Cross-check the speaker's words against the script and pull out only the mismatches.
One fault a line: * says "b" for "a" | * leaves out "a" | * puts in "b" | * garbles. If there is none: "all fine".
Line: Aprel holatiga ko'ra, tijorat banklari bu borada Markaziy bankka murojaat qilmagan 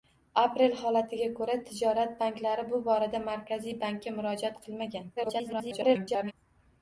* garbles